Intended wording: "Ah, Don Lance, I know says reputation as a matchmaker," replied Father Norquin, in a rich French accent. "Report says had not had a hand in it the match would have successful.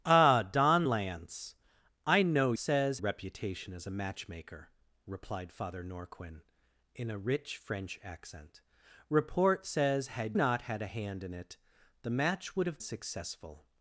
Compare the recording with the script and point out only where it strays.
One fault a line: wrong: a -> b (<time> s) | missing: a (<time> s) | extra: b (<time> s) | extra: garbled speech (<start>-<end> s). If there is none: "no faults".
no faults